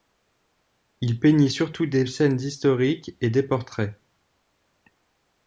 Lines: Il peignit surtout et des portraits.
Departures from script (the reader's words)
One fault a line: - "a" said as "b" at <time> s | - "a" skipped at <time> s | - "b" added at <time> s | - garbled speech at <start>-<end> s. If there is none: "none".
- "des scènes historiques" added at 1.8 s